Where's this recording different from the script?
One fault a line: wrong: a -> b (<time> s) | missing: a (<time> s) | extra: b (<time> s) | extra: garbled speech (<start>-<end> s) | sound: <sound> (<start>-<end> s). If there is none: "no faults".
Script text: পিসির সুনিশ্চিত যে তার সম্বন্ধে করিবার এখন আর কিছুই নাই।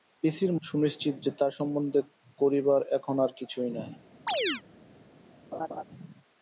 sound: chirp (4.3-4.6 s)
sound: laugh (5.5-5.8 s)